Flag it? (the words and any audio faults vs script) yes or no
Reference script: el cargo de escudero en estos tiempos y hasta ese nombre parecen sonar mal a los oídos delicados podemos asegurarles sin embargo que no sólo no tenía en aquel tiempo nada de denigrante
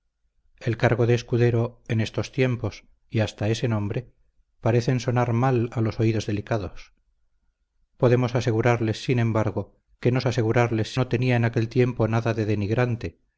yes